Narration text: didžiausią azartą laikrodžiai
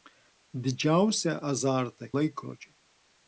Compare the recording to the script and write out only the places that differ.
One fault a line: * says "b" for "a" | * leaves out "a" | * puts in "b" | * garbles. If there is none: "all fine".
all fine